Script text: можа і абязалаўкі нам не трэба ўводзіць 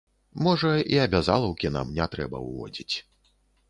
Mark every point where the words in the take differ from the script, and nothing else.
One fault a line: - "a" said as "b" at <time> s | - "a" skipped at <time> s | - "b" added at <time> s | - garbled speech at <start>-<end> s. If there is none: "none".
none